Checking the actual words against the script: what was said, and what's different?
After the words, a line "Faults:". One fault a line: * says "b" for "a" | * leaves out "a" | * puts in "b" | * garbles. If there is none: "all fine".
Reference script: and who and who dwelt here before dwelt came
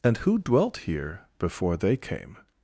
and who dwelt here before they came
Faults:
* leaves out "and who"
* says "they" for "dwelt"